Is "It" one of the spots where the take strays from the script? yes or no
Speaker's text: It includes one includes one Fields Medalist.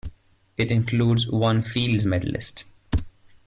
no